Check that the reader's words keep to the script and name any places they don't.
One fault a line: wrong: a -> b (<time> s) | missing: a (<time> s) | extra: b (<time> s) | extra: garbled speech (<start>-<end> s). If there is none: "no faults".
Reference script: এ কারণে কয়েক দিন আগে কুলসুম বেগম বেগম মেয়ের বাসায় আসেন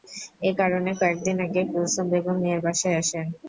missing: বেগম (2.4 s)